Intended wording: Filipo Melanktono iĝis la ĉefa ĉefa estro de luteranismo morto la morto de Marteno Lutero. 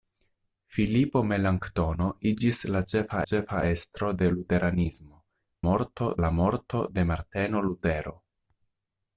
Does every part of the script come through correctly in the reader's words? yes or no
yes